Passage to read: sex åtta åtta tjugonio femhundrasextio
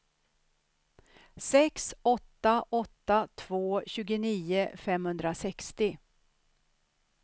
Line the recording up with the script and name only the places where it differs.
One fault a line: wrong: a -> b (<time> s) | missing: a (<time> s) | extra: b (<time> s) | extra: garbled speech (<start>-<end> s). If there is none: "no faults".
extra: två (3.4 s)